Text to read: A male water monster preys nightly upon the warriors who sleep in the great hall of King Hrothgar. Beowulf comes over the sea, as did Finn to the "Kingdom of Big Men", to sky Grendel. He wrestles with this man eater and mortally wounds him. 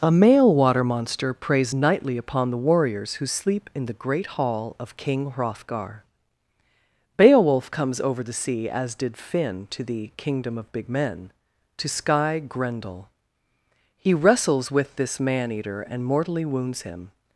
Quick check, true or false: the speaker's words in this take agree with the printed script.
true